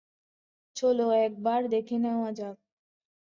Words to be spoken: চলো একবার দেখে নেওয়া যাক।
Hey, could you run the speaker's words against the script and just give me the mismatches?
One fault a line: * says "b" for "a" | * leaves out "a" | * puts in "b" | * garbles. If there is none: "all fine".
all fine